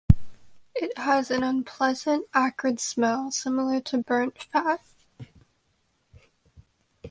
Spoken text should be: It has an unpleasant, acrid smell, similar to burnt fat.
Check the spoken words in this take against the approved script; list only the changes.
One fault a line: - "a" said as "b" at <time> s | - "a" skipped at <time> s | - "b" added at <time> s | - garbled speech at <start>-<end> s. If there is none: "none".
none